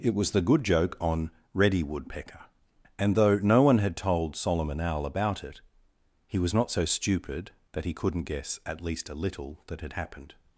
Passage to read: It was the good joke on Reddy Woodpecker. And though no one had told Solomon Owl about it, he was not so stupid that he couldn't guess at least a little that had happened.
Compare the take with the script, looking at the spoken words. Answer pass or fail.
pass